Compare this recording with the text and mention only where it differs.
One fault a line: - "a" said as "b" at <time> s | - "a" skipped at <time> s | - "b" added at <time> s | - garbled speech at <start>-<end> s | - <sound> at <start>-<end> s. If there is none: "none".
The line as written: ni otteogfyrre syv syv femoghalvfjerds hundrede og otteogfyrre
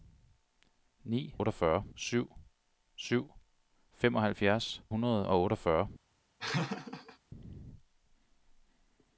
- laugh at 6.4-7.2 s